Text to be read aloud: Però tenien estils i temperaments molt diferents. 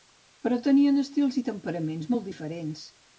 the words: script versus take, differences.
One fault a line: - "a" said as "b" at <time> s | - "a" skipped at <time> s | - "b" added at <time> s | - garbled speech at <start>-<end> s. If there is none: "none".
none